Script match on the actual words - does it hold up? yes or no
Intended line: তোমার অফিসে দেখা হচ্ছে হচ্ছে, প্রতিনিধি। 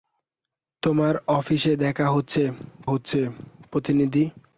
yes